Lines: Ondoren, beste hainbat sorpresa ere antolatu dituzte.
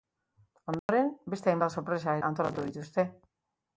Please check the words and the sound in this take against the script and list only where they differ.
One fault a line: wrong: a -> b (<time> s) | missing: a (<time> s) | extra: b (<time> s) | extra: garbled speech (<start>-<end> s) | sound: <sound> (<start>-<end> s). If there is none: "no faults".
sound: dropout (0.8-0.9 s)
missing: ere (2.2 s)